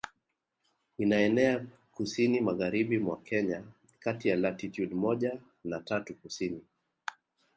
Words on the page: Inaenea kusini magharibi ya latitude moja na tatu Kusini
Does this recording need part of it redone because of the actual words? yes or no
yes